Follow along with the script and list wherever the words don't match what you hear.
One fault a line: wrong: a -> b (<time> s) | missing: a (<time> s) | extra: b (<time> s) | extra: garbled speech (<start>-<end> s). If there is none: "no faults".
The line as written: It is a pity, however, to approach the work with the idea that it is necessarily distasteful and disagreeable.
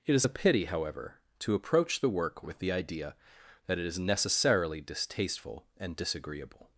no faults